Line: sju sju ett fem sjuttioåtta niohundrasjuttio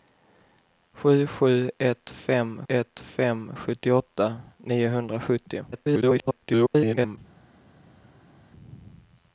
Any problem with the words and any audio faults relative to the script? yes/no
yes